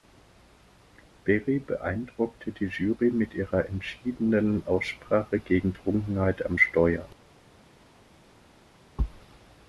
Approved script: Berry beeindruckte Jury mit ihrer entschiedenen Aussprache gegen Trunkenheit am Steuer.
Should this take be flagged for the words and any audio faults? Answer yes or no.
yes